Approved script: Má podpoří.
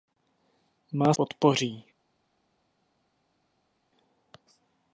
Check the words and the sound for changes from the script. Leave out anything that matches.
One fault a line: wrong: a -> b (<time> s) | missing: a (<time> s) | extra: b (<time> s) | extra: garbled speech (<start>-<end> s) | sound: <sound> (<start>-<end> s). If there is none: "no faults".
no faults